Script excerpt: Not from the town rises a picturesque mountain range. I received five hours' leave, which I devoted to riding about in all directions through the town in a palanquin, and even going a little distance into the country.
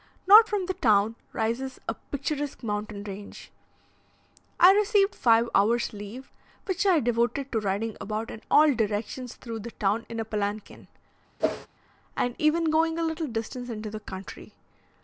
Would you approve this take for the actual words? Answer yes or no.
yes